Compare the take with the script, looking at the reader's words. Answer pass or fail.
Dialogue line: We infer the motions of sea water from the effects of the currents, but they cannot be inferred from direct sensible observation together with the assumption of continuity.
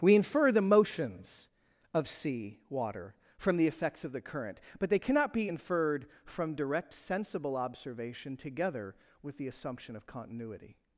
fail